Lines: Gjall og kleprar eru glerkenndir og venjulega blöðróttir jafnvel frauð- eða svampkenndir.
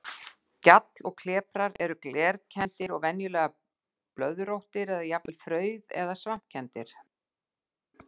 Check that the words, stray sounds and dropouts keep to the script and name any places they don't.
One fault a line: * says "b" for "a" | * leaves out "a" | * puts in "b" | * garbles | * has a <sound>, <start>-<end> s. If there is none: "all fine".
* puts in "eða"